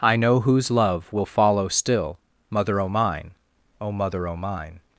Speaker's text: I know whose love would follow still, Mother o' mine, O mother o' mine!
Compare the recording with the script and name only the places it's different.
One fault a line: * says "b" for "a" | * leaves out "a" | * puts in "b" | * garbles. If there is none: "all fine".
* says "will" for "would"